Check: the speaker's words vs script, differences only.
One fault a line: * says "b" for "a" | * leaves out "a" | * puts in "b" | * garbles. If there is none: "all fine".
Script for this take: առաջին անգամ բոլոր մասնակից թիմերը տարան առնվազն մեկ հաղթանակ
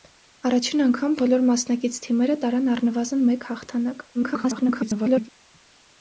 * garbles